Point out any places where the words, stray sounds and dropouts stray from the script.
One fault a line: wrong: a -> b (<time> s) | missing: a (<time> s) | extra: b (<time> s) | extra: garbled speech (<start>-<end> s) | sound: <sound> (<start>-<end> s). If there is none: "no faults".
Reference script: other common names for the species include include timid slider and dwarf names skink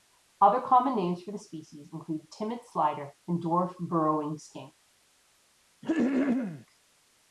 missing: include (2.3 s)
wrong: names -> burrowing (3.8 s)
sound: throat clearing (5.8-6.7 s)